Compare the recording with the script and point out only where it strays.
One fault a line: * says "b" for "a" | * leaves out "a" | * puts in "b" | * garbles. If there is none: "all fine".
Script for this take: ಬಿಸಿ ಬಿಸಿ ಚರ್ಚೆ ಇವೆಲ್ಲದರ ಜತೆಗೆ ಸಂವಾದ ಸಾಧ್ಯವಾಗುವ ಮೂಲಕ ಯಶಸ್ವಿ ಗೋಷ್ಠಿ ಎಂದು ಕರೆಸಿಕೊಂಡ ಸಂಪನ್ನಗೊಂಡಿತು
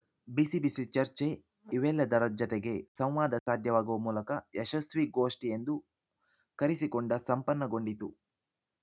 all fine